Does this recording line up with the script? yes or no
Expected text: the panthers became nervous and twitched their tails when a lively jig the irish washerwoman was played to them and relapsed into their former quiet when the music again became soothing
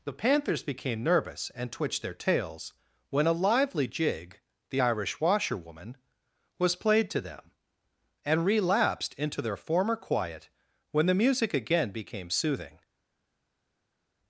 yes